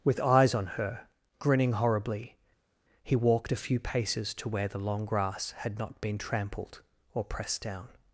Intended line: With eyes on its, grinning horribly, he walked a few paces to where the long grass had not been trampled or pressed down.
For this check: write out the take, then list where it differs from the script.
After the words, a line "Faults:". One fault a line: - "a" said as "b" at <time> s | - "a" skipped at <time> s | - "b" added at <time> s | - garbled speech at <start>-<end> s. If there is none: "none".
With eyes on her, grinning horribly, he walked a few paces to where the long grass had not been trampled or pressed down.
Faults:
- "its" said as "her" at 0.7 s